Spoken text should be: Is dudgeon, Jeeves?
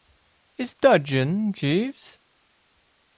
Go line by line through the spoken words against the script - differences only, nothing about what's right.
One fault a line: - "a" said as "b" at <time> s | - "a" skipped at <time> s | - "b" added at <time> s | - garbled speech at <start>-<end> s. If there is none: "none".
none